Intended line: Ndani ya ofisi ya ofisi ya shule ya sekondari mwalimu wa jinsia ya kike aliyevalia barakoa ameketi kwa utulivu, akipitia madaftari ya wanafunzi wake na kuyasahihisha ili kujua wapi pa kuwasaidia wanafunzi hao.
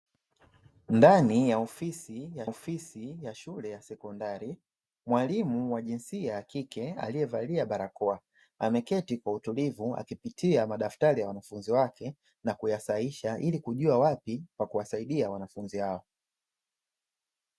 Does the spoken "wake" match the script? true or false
true